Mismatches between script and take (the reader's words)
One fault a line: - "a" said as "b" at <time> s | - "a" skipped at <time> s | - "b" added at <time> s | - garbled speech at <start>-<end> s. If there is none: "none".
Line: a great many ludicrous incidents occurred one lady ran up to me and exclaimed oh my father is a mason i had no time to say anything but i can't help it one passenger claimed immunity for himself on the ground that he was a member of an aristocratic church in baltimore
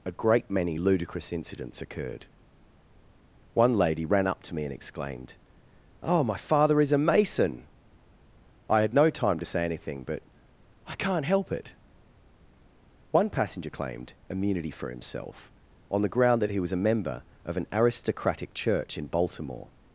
none